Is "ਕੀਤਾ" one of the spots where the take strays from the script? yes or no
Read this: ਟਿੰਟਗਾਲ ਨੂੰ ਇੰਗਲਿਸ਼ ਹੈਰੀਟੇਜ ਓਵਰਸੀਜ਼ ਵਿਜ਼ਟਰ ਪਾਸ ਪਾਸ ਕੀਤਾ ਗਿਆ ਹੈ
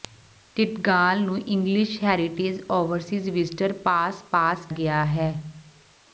yes